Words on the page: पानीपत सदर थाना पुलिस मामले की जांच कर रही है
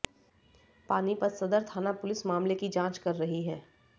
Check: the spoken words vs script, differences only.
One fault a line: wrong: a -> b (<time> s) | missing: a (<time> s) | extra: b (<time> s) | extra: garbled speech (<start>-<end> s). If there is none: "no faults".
no faults